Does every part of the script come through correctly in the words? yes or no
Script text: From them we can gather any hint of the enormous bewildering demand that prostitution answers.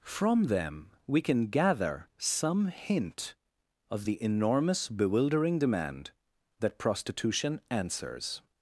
no